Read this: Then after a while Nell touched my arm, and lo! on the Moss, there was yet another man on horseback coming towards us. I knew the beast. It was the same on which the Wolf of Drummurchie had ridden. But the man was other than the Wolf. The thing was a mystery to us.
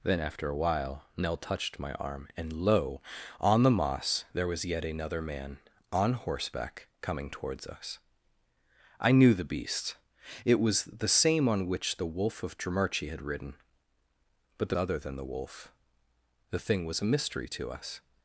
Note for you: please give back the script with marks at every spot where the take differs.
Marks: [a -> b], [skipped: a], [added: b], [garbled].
Then after a while Nell touched my arm, and lo! on the Moss, there was yet another man on horseback coming towards us. I knew the beast. It was the same on which the Wolf of Drummurchie had ridden. But the [skipped: man was] other than the Wolf. The thing was a mystery to us.